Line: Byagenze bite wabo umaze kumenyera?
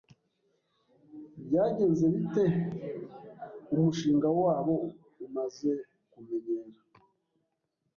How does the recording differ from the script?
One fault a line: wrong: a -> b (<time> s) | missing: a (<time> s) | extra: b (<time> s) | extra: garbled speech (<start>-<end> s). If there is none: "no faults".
extra: umushinga (3.7 s)